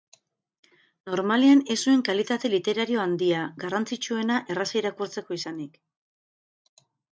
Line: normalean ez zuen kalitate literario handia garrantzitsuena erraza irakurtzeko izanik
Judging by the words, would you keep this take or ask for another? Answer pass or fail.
pass